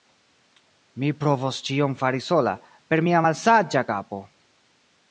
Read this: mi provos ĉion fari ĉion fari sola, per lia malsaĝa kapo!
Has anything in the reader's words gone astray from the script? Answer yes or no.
yes